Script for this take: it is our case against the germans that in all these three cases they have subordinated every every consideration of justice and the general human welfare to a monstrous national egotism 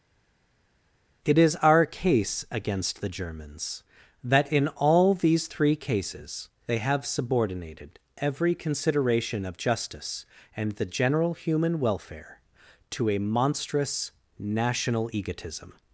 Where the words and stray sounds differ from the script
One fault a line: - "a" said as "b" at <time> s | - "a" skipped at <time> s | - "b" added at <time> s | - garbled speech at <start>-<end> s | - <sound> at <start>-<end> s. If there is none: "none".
- "every" skipped at 8.6 s